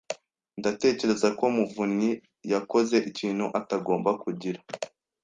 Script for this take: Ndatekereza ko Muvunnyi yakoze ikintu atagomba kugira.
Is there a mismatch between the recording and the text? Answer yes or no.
no